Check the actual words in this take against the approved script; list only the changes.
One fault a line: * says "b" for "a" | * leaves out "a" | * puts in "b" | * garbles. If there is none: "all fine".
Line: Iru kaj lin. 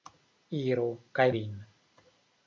all fine